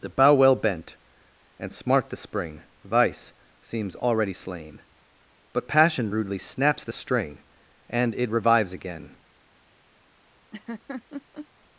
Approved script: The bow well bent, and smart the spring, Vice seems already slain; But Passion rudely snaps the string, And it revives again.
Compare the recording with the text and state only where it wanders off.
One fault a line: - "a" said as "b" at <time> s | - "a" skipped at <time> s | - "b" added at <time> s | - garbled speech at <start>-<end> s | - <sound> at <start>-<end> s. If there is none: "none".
- laugh at 10.5-11.5 s